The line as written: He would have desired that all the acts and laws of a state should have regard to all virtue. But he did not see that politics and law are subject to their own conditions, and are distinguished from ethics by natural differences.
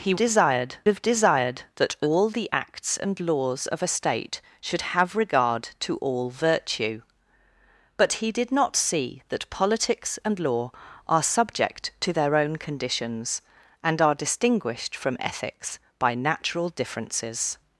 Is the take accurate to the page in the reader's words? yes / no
no